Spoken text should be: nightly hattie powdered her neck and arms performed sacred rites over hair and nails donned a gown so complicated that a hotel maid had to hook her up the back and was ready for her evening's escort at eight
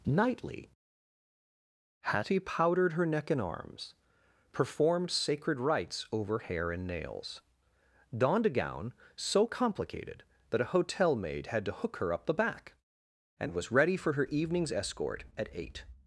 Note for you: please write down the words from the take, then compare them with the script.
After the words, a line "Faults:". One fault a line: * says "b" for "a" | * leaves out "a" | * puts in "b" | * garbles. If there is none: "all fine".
nightly hattie powdered her neck and arms performed sacred rites over hair and nails donned a gown so complicated that a hotel maid had to hook her up the back and was ready for her evening's escort at eight
Faults:
all fine